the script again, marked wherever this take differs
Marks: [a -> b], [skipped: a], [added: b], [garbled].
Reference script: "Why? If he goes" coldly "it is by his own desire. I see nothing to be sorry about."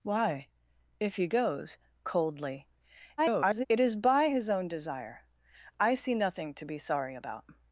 "Why? If he goes" coldly [garbled] "it is by his own desire. I see nothing to be sorry about."